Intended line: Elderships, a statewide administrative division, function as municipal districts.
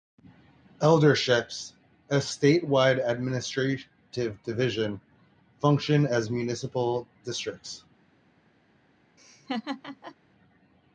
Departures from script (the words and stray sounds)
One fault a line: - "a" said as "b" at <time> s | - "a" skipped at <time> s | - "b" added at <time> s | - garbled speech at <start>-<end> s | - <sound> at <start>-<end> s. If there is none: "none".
- laugh at 9.2-10.2 s